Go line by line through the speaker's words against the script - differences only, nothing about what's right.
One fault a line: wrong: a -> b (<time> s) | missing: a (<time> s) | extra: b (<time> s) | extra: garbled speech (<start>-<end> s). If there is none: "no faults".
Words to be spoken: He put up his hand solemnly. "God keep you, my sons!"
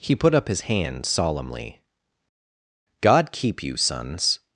missing: my (3.8 s)